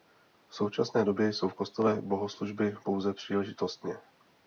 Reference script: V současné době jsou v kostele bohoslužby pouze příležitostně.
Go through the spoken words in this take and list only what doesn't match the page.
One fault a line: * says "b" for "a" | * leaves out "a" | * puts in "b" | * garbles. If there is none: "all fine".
all fine